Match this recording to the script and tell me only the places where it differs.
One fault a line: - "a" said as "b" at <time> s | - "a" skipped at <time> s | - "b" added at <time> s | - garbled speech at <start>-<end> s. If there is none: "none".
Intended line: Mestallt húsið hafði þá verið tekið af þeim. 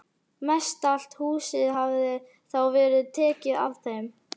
none